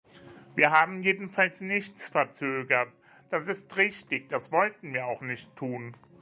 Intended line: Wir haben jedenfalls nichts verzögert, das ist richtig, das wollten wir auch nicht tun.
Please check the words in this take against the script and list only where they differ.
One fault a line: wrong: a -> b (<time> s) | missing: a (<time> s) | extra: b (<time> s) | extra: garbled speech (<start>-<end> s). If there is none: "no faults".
no faults